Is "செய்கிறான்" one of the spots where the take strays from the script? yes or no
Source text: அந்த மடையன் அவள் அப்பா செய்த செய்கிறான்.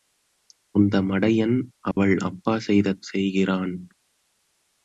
no